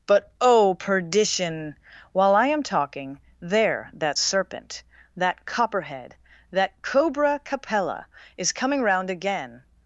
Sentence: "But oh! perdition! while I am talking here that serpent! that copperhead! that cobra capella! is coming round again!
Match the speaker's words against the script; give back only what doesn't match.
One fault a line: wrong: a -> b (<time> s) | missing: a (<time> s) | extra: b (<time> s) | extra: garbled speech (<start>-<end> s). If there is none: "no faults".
wrong: here -> there (3.4 s)